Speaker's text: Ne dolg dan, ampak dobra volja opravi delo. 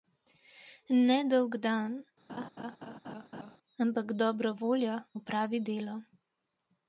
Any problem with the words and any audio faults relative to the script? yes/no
yes